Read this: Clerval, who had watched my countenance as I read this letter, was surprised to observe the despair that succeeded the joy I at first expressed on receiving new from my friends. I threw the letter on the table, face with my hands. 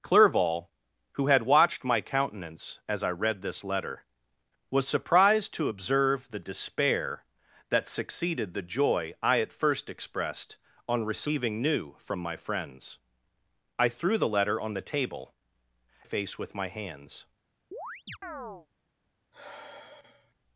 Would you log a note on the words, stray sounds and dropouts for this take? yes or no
yes